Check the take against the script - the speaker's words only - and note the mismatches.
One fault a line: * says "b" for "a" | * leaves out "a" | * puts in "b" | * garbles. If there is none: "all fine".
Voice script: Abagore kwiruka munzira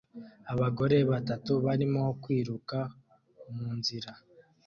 * puts in "batatu barimo"